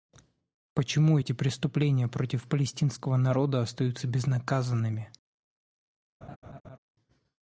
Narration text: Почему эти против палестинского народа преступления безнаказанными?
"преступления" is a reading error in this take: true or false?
true